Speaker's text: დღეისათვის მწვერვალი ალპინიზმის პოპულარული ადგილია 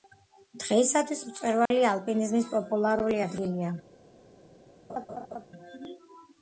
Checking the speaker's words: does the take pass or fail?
pass